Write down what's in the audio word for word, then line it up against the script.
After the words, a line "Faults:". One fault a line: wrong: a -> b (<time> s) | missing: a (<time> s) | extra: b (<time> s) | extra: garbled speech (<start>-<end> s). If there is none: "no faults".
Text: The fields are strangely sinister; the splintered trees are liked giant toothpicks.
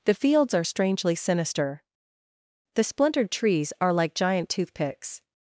The fields are strangely sinister; the splintered trees are like giant toothpicks.
Faults:
wrong: liked -> like (3.9 s)